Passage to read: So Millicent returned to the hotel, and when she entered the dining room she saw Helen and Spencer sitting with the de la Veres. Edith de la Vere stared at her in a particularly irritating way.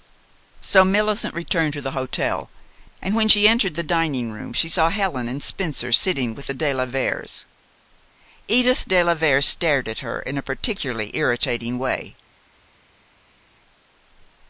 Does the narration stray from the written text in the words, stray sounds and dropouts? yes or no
no